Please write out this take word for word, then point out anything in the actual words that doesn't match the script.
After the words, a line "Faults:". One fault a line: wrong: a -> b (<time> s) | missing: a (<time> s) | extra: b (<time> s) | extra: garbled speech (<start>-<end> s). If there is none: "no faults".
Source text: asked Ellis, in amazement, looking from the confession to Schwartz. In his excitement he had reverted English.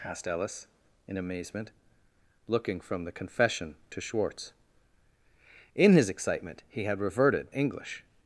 asked Ellis, in amazement, looking from the confession to Schwartz. In his excitement he had reverted English.
Faults:
no faults